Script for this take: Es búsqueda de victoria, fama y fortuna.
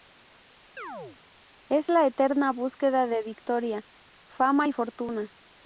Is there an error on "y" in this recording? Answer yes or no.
no